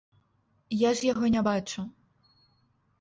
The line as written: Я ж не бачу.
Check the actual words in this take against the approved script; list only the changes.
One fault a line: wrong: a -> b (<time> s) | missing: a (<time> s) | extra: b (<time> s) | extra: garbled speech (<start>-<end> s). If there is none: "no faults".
extra: яго (1.1 s)